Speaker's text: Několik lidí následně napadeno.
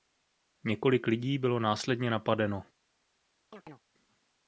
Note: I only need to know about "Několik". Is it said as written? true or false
true